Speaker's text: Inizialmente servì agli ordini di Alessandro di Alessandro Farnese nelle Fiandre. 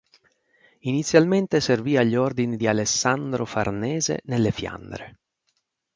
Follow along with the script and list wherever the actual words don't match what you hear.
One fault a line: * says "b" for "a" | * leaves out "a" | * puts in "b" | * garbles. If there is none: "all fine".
* leaves out "di Alessandro"